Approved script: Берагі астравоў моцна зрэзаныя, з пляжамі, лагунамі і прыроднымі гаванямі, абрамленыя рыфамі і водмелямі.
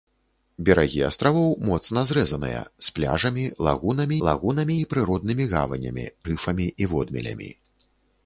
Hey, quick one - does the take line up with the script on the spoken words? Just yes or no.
no